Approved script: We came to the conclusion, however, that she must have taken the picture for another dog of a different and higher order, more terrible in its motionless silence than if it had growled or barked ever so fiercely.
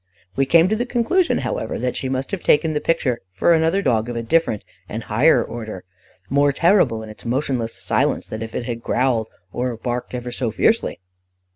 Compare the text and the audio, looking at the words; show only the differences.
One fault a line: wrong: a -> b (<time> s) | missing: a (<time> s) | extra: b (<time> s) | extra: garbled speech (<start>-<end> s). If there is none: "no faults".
no faults